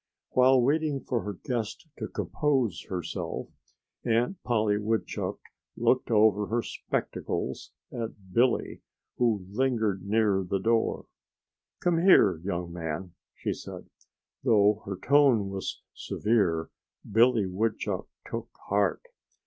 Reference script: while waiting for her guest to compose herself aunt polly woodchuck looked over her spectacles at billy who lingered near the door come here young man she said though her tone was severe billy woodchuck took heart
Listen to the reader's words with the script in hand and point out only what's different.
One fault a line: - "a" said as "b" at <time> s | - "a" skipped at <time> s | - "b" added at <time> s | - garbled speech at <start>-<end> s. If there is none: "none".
none